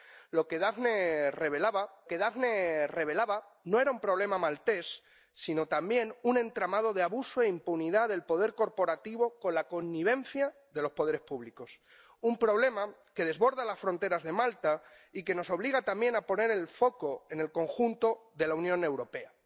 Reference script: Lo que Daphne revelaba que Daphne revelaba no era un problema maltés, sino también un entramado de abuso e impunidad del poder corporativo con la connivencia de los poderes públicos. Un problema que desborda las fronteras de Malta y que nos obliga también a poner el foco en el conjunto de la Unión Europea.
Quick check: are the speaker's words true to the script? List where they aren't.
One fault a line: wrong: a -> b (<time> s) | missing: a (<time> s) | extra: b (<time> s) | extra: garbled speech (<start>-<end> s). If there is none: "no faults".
no faults